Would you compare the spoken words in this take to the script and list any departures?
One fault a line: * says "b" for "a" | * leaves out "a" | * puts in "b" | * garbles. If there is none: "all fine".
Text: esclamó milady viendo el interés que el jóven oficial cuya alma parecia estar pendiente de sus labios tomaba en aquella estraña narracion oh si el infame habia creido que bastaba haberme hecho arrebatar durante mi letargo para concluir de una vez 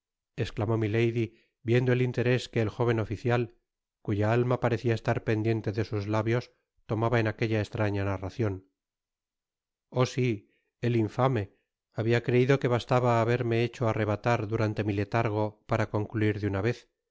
all fine